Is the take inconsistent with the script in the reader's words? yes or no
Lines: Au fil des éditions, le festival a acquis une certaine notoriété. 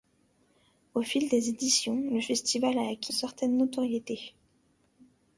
yes